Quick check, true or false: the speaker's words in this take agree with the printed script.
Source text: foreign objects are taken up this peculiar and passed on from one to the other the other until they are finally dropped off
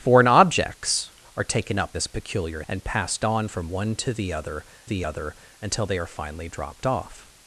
true